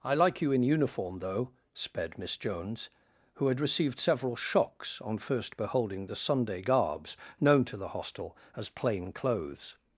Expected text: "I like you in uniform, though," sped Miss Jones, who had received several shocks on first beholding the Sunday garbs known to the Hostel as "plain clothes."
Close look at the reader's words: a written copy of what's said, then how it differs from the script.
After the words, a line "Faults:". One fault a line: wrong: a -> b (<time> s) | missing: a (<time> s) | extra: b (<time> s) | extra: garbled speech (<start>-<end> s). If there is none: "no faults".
"I like you in uniform, though," sped Miss Jones, who had received several shocks on first beholding the Sunday garbs known to the Hostel as "plain clothes."
Faults:
no faults